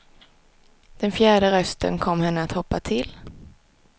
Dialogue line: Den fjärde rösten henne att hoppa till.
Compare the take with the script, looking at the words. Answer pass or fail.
fail